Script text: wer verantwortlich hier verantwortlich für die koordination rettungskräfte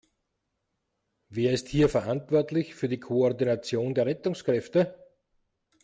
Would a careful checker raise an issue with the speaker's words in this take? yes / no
yes